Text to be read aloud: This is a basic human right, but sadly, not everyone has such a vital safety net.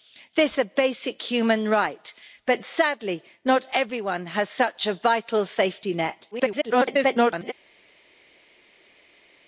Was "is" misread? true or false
true